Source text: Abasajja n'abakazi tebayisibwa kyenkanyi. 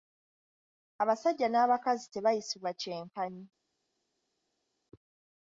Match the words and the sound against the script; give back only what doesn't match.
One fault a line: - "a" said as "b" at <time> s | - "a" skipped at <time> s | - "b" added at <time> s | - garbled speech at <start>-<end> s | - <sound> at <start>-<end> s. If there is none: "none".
none